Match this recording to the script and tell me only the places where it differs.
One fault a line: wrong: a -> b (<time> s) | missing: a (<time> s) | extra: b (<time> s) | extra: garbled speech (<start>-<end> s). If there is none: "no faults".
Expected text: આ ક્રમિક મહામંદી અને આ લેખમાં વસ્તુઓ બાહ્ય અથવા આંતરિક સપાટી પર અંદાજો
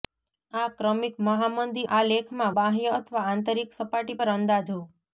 missing: અને (1.8 s)
missing: વસ્તુઓ (2.5 s)